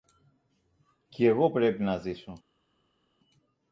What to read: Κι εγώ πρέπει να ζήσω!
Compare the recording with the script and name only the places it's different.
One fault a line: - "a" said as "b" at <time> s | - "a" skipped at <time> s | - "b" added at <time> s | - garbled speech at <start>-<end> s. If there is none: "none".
none